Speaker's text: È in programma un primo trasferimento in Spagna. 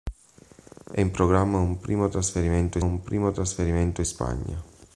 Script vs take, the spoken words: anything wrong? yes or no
yes